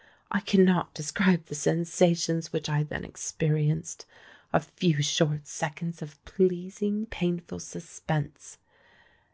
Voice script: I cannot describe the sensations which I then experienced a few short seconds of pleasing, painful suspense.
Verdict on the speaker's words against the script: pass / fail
pass